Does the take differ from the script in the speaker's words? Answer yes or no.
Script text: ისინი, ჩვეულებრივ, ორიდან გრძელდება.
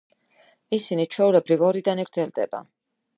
no